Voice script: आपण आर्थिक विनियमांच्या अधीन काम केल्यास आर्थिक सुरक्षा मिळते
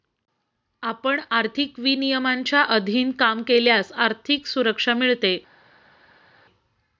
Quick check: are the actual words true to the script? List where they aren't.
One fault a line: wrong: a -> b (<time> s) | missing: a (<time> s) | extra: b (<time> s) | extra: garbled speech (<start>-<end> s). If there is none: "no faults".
no faults